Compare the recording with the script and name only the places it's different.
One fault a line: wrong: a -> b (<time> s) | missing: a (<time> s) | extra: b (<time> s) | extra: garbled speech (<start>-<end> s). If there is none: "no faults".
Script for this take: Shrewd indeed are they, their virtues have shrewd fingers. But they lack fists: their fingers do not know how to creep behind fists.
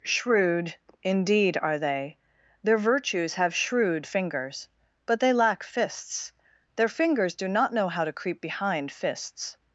no faults